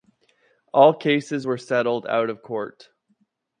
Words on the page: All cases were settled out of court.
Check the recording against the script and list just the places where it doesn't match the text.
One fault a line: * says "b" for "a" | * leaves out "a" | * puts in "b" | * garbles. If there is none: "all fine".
all fine